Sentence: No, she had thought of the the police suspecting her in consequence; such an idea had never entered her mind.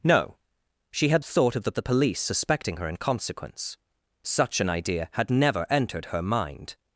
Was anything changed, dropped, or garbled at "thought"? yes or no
no